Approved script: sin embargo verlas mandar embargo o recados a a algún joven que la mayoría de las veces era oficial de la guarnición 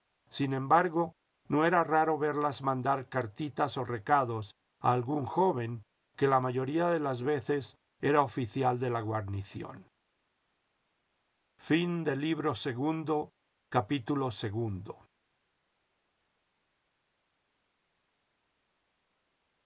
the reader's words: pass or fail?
fail